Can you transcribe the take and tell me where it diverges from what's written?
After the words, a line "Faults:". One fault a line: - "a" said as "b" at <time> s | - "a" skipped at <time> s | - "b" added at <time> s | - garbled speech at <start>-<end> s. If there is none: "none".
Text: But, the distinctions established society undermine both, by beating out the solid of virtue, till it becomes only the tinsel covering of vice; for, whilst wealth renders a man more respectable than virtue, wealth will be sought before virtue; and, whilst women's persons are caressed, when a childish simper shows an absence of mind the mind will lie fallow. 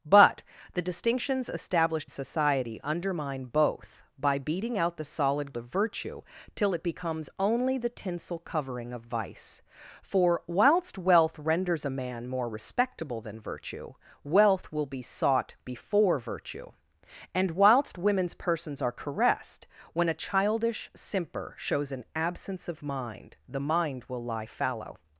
But, the distinctions established society undermine both, by beating out the solid of virtue, till it becomes only the tinsel covering of vice; for, whilst wealth renders a man more respectable than virtue, wealth will be sought before virtue; and, whilst women's persons are caressed, when a childish simper shows an absence of mind the mind will lie fallow.
Faults:
none